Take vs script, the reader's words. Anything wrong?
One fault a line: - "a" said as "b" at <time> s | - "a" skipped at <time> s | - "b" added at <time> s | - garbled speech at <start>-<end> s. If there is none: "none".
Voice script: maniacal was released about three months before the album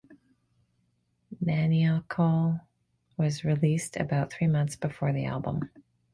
none